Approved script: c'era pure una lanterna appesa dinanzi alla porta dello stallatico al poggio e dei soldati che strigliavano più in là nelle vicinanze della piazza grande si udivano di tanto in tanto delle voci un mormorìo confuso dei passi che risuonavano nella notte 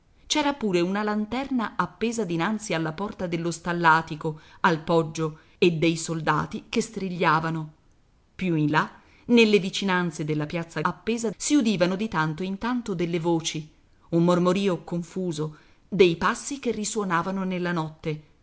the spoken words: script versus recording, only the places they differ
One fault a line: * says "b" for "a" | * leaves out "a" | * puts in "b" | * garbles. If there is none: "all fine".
* says "appesa" for "grande"